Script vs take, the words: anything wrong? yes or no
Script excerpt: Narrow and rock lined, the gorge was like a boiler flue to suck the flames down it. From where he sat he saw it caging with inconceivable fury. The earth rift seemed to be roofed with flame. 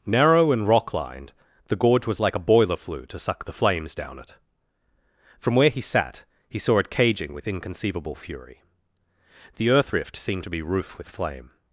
yes